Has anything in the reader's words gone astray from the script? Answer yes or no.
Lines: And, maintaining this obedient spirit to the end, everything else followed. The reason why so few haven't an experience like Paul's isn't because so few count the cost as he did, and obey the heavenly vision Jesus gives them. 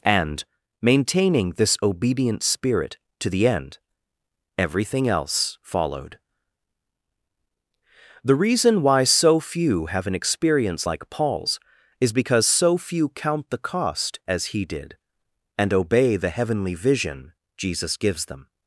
yes